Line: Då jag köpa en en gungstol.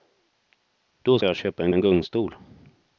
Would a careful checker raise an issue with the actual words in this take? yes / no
no